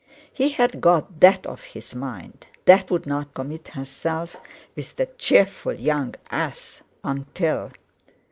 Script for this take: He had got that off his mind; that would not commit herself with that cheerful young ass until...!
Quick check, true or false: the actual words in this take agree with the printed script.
true